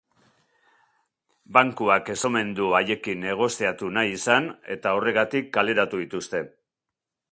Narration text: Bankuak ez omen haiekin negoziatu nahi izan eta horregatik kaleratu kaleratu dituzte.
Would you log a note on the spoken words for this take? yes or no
yes